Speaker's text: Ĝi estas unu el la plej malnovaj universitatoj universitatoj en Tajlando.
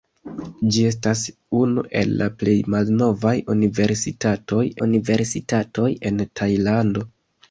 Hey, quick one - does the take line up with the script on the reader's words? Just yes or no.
yes